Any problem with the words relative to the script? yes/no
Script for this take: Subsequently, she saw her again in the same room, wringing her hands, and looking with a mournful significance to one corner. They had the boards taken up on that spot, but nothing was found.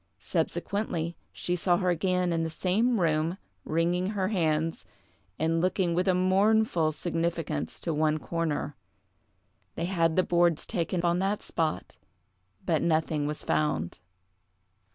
yes